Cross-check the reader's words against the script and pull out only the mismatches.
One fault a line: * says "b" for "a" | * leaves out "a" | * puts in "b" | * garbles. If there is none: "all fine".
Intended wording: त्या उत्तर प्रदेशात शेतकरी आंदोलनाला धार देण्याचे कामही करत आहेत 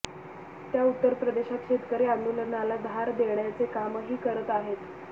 all fine